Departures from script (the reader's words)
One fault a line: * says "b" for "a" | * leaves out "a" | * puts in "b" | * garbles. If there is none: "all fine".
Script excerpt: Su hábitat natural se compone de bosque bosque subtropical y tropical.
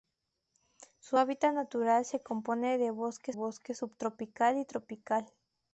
all fine